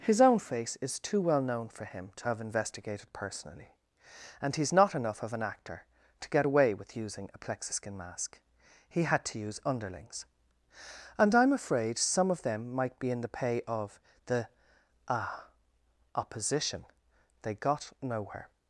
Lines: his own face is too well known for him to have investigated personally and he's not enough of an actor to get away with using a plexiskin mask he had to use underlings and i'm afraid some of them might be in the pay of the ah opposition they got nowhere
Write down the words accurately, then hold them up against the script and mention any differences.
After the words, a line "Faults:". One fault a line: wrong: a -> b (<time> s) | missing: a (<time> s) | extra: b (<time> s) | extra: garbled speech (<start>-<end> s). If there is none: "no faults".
his own face is too well known for him to have investigated personally and he's not enough of an actor to get away with using a plexiskin mask he had to use underlings and i'm afraid some of them might be in the pay of the ah opposition they got nowhere
Faults:
no faults